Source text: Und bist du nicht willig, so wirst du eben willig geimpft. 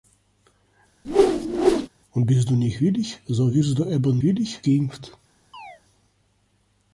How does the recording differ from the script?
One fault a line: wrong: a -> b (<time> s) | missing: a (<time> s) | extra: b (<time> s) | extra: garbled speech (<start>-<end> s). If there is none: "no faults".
no faults